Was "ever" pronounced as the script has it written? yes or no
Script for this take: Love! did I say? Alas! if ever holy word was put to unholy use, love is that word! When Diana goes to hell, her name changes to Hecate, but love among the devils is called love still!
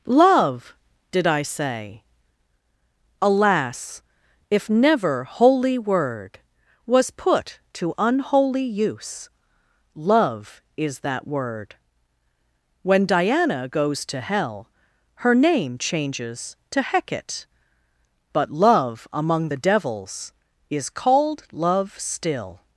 no